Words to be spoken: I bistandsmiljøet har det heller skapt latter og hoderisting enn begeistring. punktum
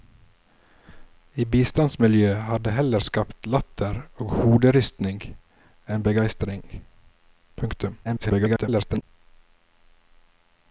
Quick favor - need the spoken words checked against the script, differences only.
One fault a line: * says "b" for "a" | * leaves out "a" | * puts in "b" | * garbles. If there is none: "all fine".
* garbles